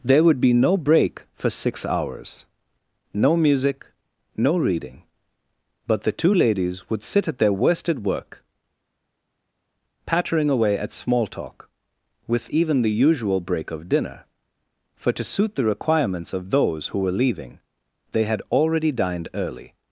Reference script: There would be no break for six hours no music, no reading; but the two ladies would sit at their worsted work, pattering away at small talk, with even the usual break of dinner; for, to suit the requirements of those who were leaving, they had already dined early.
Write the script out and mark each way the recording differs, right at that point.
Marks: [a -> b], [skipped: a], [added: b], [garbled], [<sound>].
There would be no break for six hours no music, no reading; but the two ladies would sit at their worsted work, pattering away at small talk, with even the usual break of dinner; for, to suit the requirements of those who were leaving, they had already dined early.